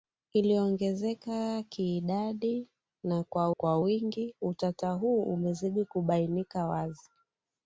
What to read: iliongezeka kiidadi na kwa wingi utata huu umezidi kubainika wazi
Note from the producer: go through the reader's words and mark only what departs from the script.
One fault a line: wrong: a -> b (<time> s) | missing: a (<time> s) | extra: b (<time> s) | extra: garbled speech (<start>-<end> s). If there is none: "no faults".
extra: kwa (3.5 s)